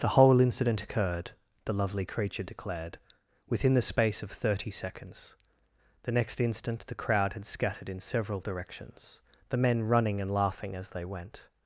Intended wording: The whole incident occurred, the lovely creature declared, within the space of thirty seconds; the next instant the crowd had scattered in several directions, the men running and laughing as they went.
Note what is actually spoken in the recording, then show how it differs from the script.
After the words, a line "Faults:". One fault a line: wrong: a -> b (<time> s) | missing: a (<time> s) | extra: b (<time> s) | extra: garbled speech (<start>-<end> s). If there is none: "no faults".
The whole incident occurred, the lovely creature declared, within the space of thirty seconds; the next instant the crowd had scattered in several directions, the men running and laughing as they went.
Faults:
no faults